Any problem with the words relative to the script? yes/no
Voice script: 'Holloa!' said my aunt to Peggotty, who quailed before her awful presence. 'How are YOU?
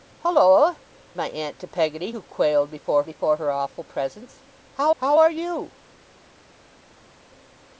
yes